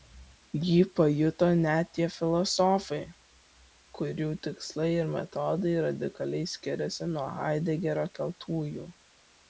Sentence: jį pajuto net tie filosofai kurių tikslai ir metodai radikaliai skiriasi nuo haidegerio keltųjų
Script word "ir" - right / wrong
right